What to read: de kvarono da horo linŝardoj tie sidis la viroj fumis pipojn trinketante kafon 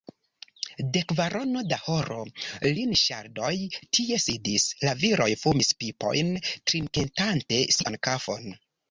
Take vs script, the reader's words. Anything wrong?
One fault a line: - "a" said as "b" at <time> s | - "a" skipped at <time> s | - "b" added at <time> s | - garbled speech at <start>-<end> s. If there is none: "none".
- "sian" added at 7.8 s